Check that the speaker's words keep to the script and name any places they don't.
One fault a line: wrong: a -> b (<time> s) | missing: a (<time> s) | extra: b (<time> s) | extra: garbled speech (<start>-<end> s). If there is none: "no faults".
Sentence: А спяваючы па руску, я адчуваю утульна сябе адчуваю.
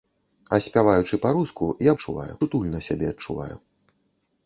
no faults